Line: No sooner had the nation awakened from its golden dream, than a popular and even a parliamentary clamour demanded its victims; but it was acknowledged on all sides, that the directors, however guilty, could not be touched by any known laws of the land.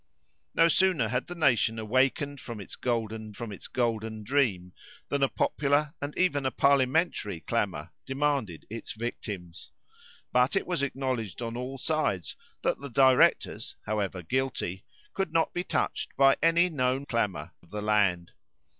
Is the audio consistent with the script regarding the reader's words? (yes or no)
no